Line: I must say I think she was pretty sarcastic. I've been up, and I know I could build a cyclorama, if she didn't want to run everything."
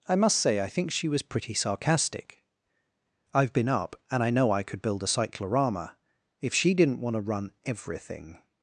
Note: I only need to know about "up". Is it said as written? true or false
true